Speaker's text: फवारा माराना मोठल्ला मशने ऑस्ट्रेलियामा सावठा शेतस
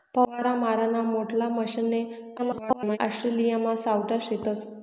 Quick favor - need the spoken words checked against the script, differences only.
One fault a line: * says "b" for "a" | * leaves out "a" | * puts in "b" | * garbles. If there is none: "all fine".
* garbles